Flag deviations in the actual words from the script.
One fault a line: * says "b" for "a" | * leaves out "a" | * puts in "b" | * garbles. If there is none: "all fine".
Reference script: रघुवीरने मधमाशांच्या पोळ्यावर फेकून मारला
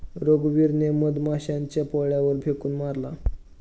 all fine